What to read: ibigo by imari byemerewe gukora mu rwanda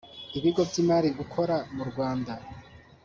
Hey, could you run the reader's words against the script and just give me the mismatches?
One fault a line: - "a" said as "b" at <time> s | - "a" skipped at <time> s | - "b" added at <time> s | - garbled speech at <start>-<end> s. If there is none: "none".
- "byemerewe" skipped at 1.1 s